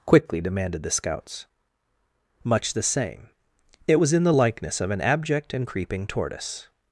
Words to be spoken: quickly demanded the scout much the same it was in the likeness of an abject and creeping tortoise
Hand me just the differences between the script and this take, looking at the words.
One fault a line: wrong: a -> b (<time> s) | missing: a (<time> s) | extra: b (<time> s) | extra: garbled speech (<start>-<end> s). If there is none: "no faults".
wrong: scout -> scouts (0.9 s)